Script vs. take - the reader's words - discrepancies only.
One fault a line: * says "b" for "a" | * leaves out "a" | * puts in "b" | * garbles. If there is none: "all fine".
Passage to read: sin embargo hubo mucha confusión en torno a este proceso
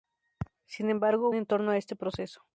* leaves out "hubo mucha confusión"